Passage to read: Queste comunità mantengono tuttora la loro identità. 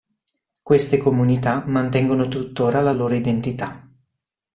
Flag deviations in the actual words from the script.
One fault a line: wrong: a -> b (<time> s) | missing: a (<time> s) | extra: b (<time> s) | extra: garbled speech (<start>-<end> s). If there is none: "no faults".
no faults